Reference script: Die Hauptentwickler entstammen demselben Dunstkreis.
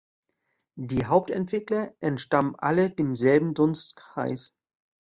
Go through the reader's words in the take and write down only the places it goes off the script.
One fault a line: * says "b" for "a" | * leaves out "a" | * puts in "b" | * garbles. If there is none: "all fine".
* puts in "alle"